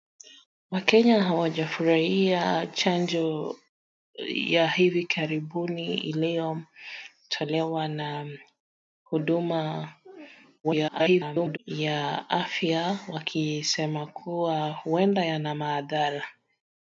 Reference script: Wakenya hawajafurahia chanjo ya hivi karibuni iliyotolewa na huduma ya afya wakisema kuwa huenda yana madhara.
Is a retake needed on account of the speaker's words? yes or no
yes